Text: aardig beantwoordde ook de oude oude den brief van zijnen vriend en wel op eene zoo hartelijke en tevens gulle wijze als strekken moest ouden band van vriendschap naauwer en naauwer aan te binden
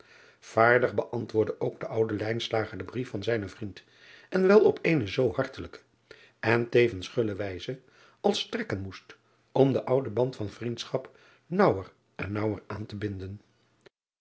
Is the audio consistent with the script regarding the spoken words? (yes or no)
no